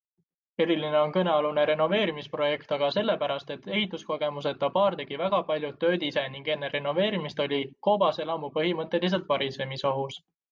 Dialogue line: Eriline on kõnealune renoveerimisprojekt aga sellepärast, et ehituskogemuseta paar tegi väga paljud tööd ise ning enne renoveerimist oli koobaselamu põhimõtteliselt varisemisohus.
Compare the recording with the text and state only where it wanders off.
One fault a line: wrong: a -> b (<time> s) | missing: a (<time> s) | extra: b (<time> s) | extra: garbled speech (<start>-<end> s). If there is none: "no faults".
no faults